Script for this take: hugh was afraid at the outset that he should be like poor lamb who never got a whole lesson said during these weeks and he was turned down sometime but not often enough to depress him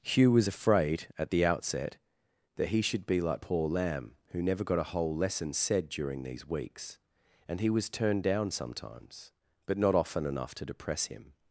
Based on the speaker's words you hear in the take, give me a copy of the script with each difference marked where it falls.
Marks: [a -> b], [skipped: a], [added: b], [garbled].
hugh was afraid at the outset that he should be like poor lamb who never got a whole lesson said during these weeks and he was turned down [sometime -> sometimes] but not often enough to depress him